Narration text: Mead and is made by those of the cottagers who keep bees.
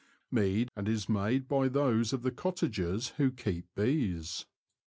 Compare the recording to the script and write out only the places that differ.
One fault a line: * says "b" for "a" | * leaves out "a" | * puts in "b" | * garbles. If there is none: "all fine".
all fine